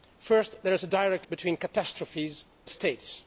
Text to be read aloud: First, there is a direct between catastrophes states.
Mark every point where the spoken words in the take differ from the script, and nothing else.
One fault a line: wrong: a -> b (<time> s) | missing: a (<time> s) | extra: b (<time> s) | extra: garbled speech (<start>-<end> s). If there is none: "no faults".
no faults